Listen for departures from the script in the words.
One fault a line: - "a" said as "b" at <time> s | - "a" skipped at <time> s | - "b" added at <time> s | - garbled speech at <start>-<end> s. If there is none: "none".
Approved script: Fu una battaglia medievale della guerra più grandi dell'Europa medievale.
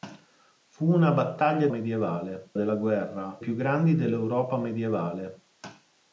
none